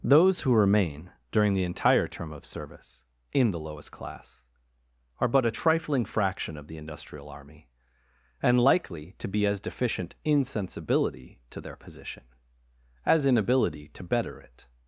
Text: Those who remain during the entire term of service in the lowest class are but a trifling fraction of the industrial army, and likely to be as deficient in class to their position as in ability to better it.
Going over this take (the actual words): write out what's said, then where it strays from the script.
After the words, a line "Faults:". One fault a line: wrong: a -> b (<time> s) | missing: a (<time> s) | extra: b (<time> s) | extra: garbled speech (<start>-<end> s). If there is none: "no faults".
Those who remain during the entire term of service in the lowest class are but a trifling fraction of the industrial army, and likely to be as deficient in sensibility to their position as in ability to better it.
Faults:
wrong: class -> sensibility (10.4 s)